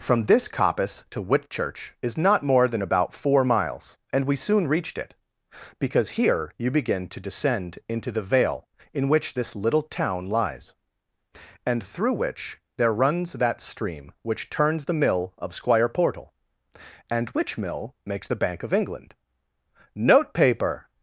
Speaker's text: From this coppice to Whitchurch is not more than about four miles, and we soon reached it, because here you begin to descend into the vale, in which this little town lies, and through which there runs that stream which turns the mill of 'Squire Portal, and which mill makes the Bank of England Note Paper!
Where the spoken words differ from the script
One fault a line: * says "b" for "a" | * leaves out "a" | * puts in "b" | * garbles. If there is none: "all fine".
all fine